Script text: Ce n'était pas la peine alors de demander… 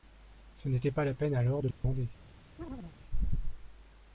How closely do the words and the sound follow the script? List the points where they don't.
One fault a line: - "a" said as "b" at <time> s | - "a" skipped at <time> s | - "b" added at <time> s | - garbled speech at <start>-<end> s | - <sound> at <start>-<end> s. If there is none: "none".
- dropout at 1.7-1.8 s
- chirp at 2.6-3.0 s